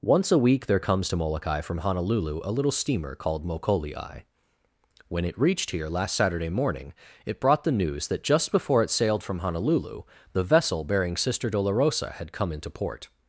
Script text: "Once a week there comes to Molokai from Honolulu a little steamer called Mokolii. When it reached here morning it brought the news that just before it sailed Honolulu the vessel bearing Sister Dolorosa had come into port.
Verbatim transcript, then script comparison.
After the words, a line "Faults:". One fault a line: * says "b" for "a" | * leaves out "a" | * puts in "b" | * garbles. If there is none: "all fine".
"Once a week there comes to Molokai from Honolulu a little steamer called Mokolii. When it reached here last Saturday morning it brought the news that just before it sailed from Honolulu the vessel bearing Sister Dolorosa had come into port.
Faults:
* puts in "last Saturday"
* puts in "from"